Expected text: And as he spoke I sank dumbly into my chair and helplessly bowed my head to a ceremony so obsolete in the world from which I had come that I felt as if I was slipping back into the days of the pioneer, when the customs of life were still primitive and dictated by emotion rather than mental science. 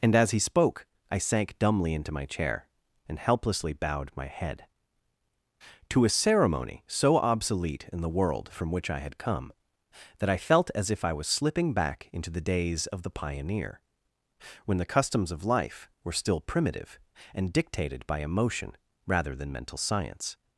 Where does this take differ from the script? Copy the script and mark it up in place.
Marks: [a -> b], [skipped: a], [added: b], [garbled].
And as he spoke I sank dumbly into my chair and helplessly bowed my head to a ceremony so obsolete in the world from which I had come that I felt as if I was slipping back into the days of the pioneer, when the customs of life were still primitive and dictated by emotion rather than mental science.